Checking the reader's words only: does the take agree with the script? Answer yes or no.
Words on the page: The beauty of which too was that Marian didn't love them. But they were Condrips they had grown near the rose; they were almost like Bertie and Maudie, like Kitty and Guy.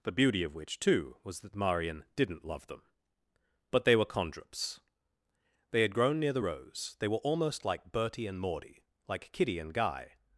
yes